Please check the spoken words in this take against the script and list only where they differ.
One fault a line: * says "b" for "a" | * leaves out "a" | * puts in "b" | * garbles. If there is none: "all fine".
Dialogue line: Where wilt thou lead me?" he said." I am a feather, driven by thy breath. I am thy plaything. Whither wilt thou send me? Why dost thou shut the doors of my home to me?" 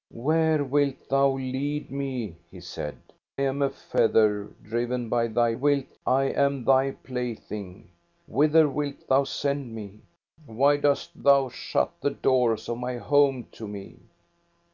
* leaves out "I"
* says "wilt" for "breath"